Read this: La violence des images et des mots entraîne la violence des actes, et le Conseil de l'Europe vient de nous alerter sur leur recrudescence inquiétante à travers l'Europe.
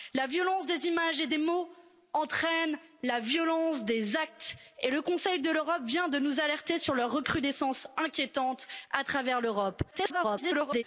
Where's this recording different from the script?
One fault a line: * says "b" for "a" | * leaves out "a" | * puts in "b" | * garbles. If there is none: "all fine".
* garbles